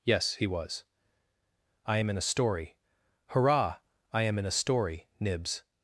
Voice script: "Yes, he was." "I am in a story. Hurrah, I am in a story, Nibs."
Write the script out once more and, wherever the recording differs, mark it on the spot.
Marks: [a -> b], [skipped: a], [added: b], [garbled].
"Yes, he was." "I am in a story. Hurrah, I am in a story, Nibs."